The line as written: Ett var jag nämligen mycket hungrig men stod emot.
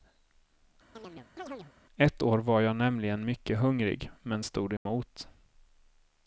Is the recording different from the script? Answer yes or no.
yes